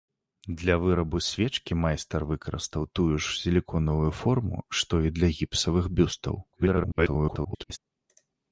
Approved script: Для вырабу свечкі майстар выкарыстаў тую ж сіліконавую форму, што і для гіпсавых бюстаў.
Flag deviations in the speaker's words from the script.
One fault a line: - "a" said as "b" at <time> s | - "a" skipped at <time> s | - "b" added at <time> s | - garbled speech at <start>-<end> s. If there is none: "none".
- garbled speech at 6.5-7.8 s